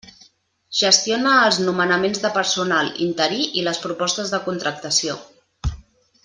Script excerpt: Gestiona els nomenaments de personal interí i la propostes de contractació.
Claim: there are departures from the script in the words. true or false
true